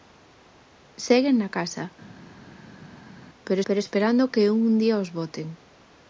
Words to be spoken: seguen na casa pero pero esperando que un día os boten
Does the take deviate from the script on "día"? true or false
false